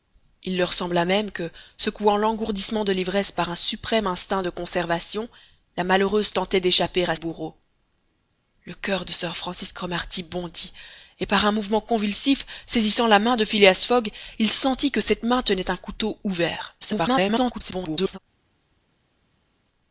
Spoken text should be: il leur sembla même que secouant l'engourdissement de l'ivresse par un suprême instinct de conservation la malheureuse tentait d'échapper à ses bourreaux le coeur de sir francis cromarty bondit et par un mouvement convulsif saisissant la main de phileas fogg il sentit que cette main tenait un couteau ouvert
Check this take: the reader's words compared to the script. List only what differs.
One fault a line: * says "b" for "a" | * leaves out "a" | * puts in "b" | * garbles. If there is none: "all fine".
* leaves out "ses"
* garbles